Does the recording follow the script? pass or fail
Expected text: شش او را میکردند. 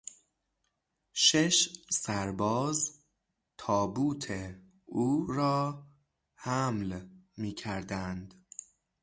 fail